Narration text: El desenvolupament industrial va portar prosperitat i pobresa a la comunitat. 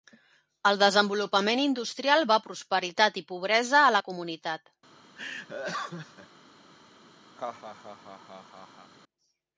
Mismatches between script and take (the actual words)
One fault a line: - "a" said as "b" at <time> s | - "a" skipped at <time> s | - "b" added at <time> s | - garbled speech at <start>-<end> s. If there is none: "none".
- "portar" skipped at 2.4 s